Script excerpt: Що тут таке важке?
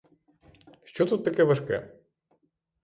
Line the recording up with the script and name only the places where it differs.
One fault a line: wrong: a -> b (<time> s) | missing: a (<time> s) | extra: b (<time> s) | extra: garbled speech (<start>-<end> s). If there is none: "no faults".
no faults